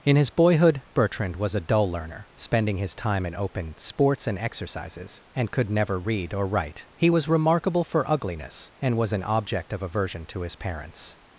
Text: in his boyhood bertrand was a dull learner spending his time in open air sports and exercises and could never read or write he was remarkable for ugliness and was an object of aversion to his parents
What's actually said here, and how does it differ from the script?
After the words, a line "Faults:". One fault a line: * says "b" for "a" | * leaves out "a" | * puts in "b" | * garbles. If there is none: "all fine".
in his boyhood bertrand was a dull learner spending his time in open sports and exercises and could never read or write he was remarkable for ugliness and was an object of aversion to his parents
Faults:
* leaves out "air"